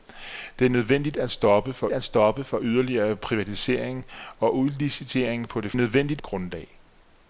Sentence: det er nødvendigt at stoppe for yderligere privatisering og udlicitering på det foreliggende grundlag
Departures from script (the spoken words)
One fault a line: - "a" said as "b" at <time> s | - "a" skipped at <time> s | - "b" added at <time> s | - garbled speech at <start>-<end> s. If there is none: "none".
- "at stoppe for" added at 1.9 s
- "foreliggende" said as "nødvendigt" at 5.7 s